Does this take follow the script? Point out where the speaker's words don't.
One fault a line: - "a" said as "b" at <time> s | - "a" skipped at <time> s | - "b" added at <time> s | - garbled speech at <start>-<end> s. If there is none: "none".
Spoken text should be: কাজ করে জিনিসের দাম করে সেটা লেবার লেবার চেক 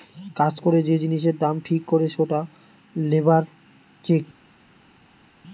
- "যে" added at 0.8 s
- "ঠিক" added at 1.6 s
- "লেবার" skipped at 3.4 s